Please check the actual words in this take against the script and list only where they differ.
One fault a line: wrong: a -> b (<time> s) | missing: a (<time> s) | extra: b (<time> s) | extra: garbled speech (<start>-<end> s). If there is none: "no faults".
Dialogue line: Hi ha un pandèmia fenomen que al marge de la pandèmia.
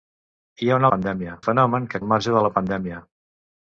no faults